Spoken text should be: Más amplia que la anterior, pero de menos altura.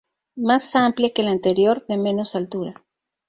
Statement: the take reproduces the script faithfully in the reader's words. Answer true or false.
false